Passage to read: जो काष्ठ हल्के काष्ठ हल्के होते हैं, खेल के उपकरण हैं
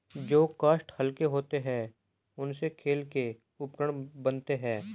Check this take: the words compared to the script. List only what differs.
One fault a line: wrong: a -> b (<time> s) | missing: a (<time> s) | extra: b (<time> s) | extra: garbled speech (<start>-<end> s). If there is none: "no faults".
missing: काष्ठ हल्के (1.2 s)
extra: उनसे (2.4 s)
extra: बनते (4.2 s)